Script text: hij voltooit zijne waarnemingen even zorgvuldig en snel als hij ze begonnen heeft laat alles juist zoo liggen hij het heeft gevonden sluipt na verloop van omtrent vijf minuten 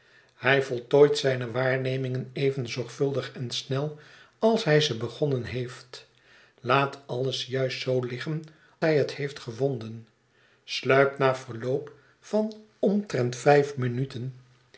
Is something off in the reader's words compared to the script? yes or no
no